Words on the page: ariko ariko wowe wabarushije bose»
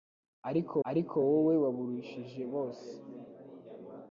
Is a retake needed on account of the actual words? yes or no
no